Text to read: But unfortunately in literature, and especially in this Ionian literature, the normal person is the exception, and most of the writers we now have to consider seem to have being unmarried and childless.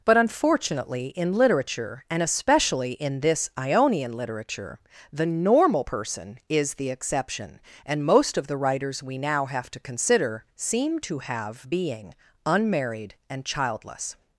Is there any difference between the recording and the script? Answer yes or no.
no